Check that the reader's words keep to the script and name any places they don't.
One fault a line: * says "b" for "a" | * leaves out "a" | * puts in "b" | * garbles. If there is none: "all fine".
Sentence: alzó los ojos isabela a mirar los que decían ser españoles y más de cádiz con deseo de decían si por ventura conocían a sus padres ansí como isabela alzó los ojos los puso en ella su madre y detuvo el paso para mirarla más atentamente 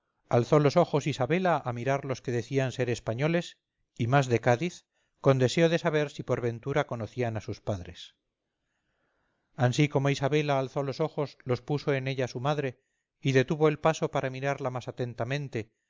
* says "saber" for "decían"